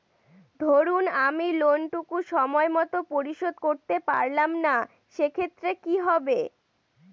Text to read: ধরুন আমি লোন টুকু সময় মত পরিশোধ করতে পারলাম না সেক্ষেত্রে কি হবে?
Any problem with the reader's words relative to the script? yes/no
no